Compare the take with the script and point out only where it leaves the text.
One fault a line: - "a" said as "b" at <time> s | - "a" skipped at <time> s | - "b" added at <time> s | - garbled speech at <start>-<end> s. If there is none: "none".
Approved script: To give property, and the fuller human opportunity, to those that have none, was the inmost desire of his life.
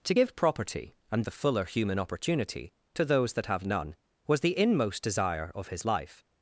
none